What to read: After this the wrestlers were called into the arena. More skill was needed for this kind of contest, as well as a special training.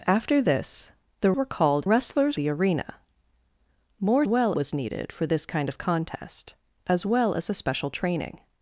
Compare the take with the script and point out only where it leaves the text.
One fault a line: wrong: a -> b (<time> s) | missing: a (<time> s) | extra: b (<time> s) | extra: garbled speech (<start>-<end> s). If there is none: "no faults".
missing: wrestlers (1.3 s)
wrong: into -> wrestlers (1.8 s)
wrong: skill -> well (4.3 s)